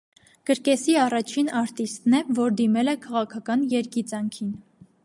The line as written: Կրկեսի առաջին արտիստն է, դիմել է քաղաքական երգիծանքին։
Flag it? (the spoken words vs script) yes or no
yes